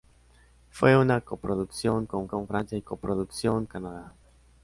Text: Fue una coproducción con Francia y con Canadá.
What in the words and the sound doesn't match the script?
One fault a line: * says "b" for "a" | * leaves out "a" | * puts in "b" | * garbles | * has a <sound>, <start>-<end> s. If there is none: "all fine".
* puts in "con"
* says "coproducción" for "con"